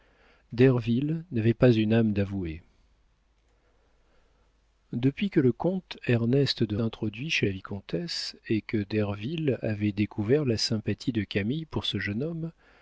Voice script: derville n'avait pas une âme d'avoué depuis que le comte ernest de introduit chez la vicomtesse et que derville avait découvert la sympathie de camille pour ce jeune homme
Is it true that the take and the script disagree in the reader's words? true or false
false